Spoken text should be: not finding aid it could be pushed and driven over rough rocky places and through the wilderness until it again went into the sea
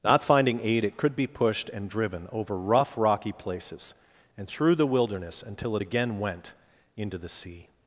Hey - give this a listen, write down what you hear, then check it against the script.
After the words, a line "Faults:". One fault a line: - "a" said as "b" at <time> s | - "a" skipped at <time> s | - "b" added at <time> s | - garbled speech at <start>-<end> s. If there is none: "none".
not finding aid it could be pushed and driven over rough rocky places and through the wilderness until it again went into the sea
Faults:
none